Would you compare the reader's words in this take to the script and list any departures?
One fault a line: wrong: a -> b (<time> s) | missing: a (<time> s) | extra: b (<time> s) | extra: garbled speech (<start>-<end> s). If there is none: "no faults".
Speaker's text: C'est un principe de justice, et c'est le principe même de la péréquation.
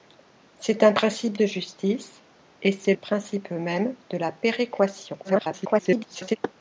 missing: le (2.9 s)
extra: garbled speech (5.2-6.4 s)